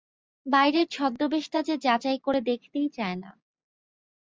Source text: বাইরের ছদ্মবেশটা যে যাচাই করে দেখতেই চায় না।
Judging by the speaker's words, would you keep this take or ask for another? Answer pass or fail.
pass